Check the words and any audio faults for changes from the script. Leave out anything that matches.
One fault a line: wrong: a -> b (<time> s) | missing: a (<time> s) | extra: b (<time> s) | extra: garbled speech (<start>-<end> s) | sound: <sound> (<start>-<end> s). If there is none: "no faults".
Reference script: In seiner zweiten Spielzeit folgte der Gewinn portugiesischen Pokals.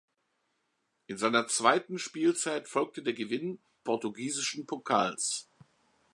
no faults